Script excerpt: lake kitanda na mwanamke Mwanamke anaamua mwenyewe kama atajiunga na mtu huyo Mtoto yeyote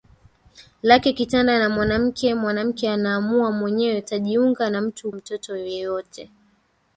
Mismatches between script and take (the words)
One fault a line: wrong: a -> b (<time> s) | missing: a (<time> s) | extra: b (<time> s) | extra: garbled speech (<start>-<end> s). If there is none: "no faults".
missing: kama (4.0 s)
missing: huyo (5.1 s)